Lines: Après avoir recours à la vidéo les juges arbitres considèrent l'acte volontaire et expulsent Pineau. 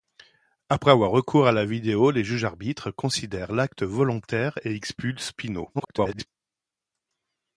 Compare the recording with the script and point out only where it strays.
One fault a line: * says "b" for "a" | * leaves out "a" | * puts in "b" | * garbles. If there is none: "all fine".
* garbles